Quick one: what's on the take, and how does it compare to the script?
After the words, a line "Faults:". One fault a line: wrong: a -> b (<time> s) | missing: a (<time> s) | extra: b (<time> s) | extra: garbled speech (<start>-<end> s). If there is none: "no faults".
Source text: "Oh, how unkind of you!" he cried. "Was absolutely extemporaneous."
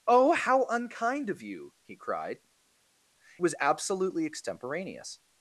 "Oh, how unkind of you!" he cried. "Was absolutely extemporaneous."
Faults:
no faults